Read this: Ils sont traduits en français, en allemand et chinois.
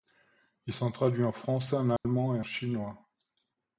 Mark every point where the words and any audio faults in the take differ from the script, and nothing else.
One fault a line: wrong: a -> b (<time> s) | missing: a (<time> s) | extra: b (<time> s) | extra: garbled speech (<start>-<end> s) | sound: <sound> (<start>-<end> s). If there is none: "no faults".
sound: dropout (2.0-2.0 s)